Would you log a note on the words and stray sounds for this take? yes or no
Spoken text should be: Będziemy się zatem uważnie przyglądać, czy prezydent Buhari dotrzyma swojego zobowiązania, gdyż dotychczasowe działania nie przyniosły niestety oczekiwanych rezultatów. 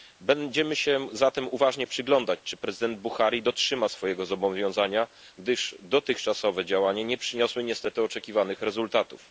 no